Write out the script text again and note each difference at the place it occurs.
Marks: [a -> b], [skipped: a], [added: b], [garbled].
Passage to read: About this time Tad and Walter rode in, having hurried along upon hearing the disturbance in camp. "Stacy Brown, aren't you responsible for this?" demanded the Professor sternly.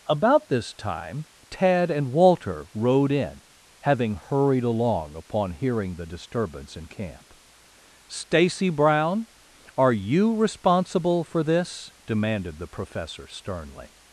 About this time Tad and Walter rode in, having hurried along upon hearing the disturbance in camp. "Stacy Brown, [aren't -> are] you responsible for this?" demanded the Professor sternly.